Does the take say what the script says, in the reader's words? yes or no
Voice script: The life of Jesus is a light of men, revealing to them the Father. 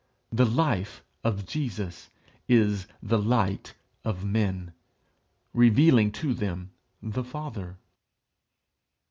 no